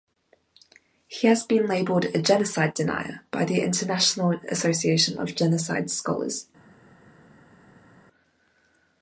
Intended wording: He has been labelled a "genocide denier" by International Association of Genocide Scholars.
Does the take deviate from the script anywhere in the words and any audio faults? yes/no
yes